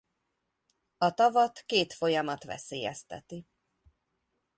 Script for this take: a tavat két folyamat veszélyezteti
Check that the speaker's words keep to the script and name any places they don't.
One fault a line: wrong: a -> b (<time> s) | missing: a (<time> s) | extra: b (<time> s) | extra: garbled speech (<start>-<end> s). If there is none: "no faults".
no faults